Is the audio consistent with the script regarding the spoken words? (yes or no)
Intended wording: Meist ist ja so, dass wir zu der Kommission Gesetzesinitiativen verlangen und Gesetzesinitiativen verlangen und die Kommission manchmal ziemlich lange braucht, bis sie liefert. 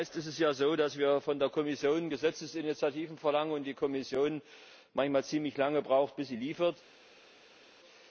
no